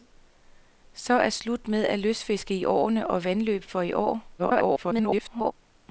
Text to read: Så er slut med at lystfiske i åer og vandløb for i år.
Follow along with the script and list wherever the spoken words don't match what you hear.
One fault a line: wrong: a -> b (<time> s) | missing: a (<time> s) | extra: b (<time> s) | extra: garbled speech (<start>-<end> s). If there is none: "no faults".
extra: garbled speech (4.4-5.5 s)